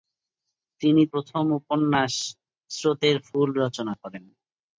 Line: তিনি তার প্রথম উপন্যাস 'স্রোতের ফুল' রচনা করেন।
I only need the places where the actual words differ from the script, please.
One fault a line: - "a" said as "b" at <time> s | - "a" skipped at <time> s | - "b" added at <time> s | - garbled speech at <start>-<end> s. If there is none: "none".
- "তার" skipped at 1.0 s